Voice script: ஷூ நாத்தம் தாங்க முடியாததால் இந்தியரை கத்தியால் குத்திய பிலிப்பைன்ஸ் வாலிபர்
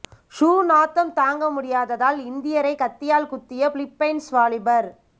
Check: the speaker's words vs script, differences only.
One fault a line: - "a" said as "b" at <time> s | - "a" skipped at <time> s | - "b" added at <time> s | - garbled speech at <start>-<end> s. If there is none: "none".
none